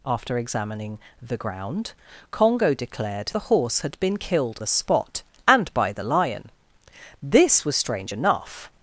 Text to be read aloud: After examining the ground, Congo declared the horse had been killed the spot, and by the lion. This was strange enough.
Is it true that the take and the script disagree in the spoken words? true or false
false